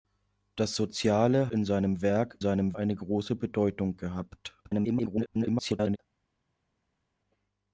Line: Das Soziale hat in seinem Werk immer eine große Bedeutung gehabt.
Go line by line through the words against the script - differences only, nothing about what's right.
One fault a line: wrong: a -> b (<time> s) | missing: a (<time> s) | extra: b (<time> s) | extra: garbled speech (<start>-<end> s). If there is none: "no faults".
missing: hat (1.5 s)
wrong: immer -> seinem (2.4 s)
extra: garbled speech (4.6-6.0 s)